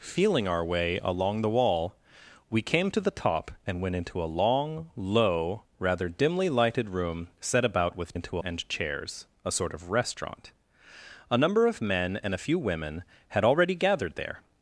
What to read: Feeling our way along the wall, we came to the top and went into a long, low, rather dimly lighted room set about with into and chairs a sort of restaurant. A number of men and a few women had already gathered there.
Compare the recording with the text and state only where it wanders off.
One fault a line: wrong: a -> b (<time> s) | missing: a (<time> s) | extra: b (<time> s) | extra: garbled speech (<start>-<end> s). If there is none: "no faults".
no faults